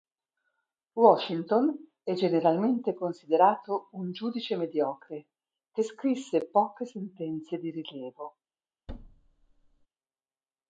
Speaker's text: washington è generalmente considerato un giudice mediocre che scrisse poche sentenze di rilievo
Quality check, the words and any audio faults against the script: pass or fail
fail